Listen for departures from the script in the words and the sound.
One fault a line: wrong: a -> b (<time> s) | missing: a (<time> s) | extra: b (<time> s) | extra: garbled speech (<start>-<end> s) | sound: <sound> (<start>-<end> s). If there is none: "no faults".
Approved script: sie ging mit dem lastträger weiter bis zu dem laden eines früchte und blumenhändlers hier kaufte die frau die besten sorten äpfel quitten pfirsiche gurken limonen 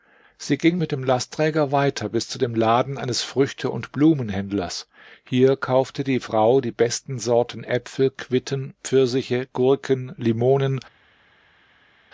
no faults